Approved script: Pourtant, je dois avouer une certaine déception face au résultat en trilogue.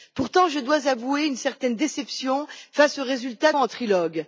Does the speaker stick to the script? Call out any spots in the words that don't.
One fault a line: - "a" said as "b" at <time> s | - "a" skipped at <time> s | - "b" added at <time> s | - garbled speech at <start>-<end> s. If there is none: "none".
none